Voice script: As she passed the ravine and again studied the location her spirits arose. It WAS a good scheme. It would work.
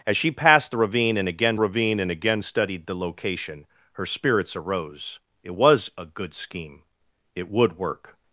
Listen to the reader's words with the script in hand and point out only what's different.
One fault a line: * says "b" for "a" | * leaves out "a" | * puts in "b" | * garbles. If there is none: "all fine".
* puts in "ravine and again"